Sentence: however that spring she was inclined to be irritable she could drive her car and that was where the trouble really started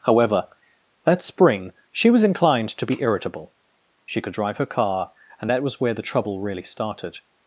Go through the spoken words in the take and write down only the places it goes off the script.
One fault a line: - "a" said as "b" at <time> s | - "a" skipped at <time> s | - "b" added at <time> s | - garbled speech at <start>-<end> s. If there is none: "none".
none